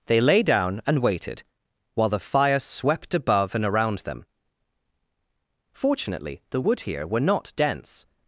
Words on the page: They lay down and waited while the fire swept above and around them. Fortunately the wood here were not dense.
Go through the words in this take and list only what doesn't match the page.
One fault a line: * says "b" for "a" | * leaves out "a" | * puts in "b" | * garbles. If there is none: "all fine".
all fine